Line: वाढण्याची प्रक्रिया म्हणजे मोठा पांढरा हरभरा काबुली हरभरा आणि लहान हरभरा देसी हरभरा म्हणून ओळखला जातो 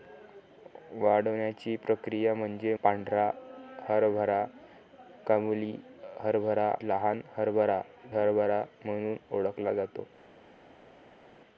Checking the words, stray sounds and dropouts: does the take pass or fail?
fail